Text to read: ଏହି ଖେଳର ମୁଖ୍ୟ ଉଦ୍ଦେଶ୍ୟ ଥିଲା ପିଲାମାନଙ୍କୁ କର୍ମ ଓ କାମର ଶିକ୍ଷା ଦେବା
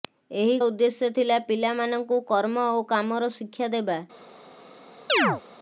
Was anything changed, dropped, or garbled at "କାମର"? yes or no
no